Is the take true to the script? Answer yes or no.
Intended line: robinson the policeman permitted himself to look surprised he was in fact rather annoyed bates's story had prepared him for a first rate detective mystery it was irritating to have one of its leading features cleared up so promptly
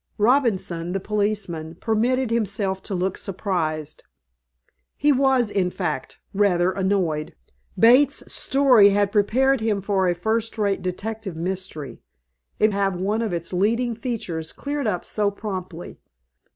no